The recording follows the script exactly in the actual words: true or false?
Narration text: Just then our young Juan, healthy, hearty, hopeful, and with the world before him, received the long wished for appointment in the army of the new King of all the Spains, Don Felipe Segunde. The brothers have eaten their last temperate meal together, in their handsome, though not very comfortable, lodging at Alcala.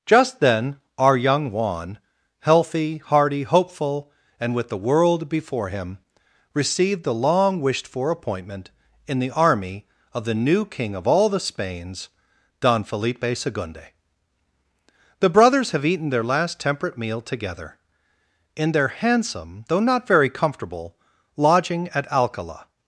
true